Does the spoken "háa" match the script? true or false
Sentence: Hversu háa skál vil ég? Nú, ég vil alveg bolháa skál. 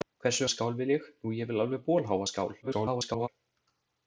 false